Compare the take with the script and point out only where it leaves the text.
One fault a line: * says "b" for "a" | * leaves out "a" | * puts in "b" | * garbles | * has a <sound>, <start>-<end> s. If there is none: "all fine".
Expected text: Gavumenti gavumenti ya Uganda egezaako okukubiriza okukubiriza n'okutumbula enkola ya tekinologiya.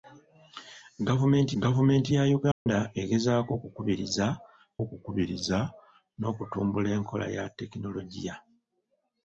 * has a dropout, 2.5-2.7 s